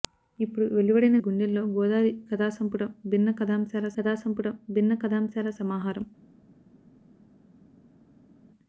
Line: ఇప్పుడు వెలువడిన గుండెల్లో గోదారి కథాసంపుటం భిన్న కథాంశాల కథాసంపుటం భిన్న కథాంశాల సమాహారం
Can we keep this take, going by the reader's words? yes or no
yes